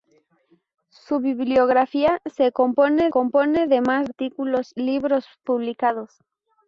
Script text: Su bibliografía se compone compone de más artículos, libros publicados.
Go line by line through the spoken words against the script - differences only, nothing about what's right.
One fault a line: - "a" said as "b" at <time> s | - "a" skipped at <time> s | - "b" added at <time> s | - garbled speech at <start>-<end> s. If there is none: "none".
none